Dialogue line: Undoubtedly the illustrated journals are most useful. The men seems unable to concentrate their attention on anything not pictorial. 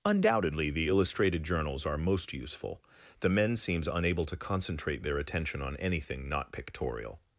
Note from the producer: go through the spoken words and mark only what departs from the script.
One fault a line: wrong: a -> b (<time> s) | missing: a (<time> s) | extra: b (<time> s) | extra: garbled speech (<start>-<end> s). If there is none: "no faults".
no faults